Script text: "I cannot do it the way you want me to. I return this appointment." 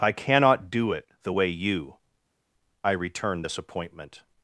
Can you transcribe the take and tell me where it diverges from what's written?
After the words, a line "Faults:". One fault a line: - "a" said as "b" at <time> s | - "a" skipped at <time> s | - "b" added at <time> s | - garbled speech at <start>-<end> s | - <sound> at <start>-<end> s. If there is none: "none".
"I cannot do it the way you. I return this appointment."
Faults:
- "want me to" skipped at 2.0 s